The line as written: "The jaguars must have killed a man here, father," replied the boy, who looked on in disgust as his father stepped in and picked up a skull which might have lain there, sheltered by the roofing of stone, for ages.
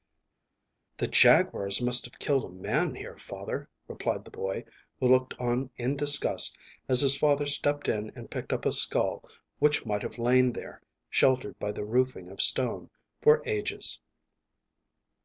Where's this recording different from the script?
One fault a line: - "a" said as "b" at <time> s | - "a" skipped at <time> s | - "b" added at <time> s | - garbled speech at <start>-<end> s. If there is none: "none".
none